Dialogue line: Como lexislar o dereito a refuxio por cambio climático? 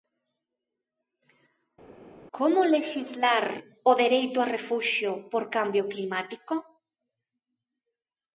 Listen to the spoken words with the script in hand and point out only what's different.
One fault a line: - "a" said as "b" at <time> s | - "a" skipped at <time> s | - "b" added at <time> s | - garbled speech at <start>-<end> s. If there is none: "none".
none